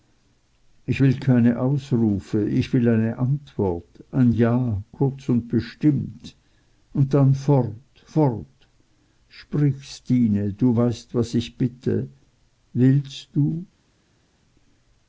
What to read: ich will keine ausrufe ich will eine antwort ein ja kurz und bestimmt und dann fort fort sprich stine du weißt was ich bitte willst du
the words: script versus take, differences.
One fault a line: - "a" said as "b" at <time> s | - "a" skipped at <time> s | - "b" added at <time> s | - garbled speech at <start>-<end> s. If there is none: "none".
none